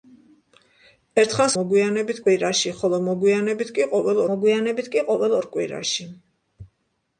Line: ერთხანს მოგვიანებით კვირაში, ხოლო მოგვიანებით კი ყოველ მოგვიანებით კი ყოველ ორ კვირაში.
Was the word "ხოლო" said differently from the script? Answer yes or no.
no